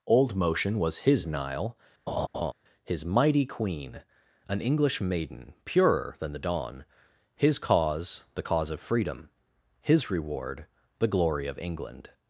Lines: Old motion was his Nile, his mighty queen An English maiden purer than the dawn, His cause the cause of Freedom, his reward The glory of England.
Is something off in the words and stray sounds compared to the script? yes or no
yes